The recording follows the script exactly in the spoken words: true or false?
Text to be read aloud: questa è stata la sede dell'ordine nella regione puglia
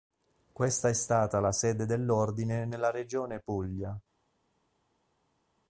true